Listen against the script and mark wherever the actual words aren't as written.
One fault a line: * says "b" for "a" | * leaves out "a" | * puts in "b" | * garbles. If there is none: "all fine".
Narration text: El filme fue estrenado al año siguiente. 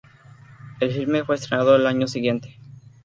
all fine